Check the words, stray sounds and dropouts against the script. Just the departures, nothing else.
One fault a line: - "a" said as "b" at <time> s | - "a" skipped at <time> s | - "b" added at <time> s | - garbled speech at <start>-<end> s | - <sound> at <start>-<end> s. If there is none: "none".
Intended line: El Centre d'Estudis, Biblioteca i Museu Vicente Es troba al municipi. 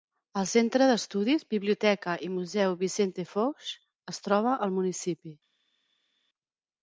- "Fox" added at 3.3 s